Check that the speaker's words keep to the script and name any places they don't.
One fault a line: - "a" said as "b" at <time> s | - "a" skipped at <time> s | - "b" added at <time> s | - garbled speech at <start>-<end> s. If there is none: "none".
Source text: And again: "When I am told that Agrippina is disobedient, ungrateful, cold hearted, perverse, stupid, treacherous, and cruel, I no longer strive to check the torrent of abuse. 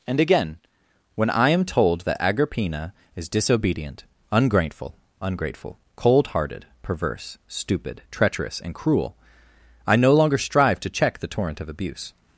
- "ungrateful" added at 5.2 s